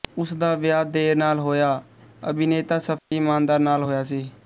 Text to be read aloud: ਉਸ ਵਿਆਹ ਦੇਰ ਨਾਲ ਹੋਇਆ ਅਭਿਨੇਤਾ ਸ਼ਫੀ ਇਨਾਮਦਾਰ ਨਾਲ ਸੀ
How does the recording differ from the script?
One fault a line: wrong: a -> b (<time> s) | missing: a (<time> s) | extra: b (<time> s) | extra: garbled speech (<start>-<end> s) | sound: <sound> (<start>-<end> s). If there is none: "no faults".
extra: ਦਾ (0.3 s)
sound: dropout (3.0-3.1 s)
extra: ਹੋਇਆ (3.8 s)